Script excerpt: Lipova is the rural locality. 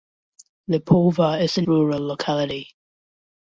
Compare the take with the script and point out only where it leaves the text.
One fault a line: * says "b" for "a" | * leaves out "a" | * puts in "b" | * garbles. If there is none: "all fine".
all fine